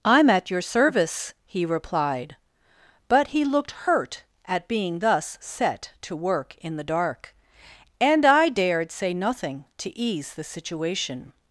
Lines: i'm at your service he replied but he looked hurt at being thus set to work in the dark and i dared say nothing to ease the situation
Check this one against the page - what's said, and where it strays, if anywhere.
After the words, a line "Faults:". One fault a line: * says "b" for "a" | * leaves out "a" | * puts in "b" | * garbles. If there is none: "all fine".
i'm at your service he replied but he looked hurt at being thus set to work in the dark and i dared say nothing to ease the situation
Faults:
all fine